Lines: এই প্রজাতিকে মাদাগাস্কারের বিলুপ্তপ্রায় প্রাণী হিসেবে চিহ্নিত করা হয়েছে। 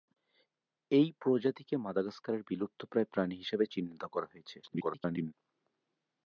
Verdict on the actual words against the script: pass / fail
fail